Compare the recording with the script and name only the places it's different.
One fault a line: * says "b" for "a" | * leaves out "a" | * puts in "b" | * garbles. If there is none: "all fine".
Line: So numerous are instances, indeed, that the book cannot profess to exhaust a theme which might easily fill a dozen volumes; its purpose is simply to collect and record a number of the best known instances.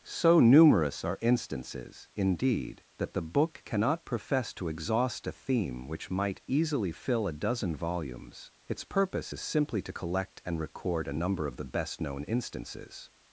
all fine